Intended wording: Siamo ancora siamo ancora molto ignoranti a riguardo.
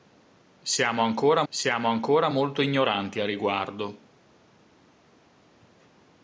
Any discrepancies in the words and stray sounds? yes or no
no